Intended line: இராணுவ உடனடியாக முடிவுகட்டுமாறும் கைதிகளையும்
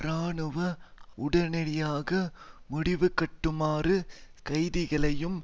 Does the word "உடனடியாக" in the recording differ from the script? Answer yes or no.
no